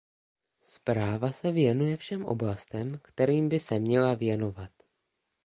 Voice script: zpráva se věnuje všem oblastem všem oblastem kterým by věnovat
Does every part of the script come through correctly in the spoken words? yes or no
no